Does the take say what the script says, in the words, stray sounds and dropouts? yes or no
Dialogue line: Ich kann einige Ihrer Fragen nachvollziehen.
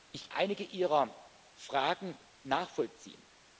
no